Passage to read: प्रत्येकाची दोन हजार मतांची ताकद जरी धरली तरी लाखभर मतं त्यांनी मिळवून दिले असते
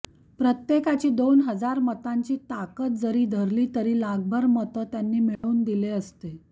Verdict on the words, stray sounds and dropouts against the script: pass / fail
fail